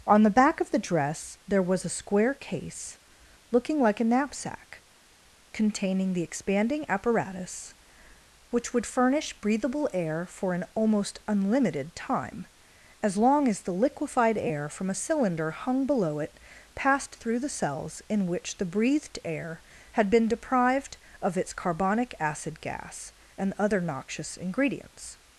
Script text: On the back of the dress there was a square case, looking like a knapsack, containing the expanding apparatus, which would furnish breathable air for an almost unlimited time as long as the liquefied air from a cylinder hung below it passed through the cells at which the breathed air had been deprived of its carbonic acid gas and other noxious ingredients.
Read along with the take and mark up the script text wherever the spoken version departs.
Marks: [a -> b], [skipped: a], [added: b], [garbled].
On the back of the dress there was a square case, looking like a knapsack, containing the expanding apparatus, which would furnish breathable air for an almost unlimited time as long as the liquefied air from a cylinder hung below it passed through the cells [at -> in] which the breathed air had been deprived of its carbonic acid gas and other noxious ingredients.